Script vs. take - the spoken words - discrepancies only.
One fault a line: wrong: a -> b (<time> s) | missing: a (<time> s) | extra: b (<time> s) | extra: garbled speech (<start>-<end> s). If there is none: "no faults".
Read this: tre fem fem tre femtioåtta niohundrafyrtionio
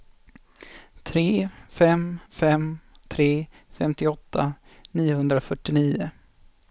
no faults